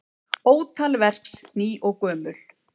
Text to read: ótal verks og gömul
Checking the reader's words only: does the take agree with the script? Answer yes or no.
no